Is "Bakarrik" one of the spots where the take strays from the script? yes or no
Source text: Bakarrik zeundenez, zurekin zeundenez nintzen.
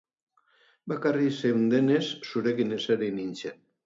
no